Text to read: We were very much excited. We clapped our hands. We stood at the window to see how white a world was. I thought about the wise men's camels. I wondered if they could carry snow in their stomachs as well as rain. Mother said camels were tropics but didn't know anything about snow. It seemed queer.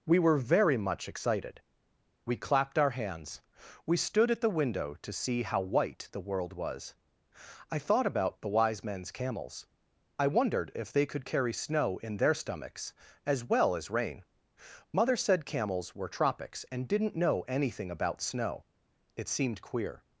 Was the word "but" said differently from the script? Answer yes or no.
yes